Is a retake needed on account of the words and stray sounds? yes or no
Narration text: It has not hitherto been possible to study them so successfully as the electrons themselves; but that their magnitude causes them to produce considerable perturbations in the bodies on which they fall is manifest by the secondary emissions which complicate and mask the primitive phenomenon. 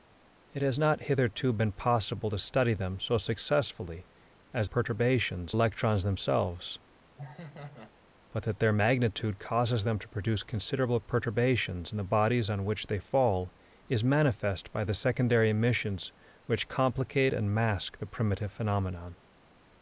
yes